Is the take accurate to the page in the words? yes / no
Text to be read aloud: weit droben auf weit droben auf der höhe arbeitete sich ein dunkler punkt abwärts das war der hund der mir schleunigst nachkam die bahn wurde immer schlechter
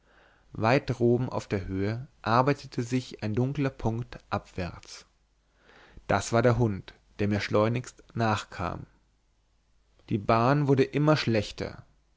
no